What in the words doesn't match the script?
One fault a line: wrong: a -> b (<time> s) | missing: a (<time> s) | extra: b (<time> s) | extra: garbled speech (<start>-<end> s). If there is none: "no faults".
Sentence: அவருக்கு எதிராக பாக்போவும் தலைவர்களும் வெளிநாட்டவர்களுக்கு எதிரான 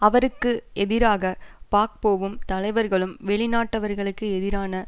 no faults